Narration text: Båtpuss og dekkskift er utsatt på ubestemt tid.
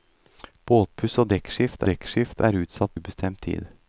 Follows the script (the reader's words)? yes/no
no